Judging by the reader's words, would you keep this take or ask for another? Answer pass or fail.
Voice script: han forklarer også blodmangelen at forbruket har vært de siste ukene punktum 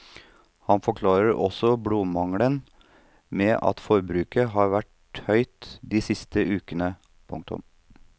fail